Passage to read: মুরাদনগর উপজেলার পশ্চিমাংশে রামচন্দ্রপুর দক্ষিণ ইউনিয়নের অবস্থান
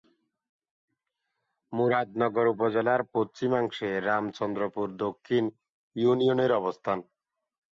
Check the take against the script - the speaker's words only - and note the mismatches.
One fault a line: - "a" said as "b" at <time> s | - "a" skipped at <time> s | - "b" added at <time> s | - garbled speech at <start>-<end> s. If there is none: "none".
none